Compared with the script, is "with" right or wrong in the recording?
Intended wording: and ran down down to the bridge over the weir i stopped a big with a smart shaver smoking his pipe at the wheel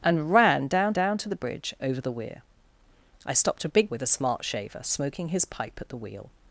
right